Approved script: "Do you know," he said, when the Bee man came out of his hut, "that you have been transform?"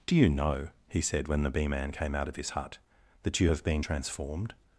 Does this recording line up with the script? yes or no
no